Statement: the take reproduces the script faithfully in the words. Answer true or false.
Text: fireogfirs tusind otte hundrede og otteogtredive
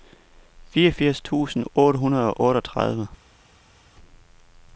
true